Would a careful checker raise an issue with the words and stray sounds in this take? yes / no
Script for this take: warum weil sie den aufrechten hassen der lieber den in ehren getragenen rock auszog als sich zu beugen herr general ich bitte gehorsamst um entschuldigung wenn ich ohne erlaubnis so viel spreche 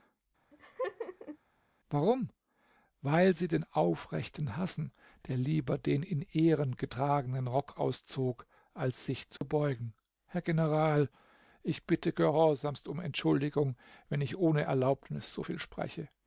yes